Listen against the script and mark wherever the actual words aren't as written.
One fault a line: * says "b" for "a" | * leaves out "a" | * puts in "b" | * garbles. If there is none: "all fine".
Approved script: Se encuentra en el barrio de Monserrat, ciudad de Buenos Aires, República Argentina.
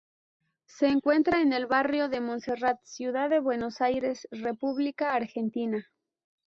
all fine